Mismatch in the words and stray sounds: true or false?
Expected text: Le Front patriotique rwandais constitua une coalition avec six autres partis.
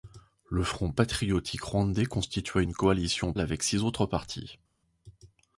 false